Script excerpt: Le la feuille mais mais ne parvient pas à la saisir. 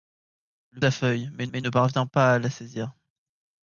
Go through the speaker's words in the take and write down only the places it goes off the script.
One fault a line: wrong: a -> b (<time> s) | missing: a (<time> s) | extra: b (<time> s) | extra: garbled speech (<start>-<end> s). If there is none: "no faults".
no faults